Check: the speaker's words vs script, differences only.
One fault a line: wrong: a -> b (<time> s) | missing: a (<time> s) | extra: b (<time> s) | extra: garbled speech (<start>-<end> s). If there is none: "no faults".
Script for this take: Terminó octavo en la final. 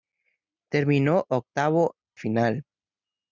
missing: en la (1.9 s)